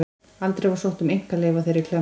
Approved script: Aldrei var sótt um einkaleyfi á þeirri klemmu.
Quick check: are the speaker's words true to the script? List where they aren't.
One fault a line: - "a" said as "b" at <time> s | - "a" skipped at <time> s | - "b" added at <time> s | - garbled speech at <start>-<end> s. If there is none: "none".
none